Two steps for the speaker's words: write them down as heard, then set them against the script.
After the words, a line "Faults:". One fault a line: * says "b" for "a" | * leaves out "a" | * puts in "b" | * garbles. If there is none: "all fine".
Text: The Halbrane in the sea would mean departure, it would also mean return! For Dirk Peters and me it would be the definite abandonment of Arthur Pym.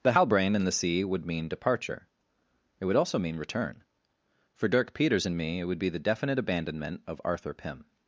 The Halbrane in the sea would mean departure, it would also mean return! For Dirk Peters and me it would be the definite abandonment of Arthur Pym.
Faults:
all fine